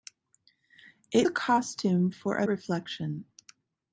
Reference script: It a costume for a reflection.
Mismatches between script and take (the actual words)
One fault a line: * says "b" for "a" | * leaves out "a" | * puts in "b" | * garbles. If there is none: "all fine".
all fine